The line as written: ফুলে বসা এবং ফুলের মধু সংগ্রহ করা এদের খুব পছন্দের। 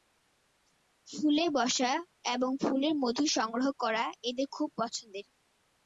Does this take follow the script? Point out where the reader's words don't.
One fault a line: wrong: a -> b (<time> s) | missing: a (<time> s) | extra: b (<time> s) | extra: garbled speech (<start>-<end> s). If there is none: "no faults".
no faults